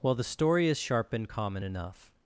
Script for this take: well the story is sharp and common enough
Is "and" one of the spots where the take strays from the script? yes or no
no